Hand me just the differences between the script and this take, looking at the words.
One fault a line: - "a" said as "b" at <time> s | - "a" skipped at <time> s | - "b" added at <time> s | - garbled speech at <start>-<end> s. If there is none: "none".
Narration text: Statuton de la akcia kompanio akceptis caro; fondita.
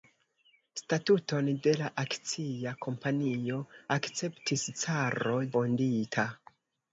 none